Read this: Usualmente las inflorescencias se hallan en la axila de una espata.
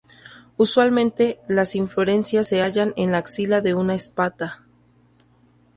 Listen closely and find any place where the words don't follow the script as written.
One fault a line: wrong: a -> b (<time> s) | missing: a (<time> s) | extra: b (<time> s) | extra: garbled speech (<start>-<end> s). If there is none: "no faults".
no faults